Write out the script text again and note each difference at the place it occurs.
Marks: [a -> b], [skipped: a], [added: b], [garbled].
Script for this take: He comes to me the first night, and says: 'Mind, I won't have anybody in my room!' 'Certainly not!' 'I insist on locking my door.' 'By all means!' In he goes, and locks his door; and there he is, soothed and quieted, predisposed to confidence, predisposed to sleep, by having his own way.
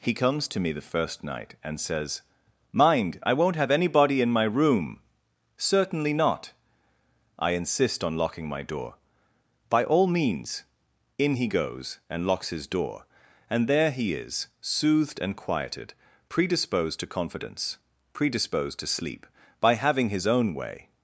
He comes to me the first night, and says: 'Mind, I won't have anybody in my room!' 'Certainly not!' 'I insist on locking my door.' 'By all means!' In he goes, and locks his door; and there he is, soothed and quieted, predisposed to confidence, predisposed to sleep, by having his own way.